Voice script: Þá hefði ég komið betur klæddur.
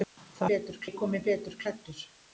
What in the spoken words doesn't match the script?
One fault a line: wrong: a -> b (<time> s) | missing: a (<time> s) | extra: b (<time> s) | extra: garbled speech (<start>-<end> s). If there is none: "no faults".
wrong: hefði -> betur (0.5 s)